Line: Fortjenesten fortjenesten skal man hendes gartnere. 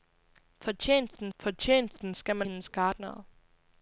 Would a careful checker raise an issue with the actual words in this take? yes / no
no